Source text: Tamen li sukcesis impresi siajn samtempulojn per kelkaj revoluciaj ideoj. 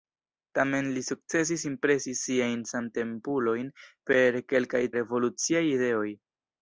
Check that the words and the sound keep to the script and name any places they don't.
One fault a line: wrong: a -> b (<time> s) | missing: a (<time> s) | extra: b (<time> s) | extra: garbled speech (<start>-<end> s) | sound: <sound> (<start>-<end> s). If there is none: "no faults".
no faults